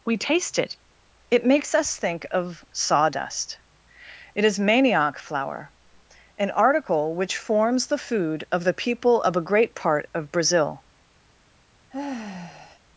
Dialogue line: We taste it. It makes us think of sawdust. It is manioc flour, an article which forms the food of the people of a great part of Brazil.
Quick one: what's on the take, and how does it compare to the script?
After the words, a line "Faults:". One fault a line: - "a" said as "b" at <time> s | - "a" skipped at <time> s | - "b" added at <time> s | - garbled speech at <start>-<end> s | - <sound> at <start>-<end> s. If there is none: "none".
We taste it. It makes us think of sawdust. It is manioc flour, an article which forms the food of the people of a great part of Brazil.
Faults:
- sigh at 11.9-12.8 s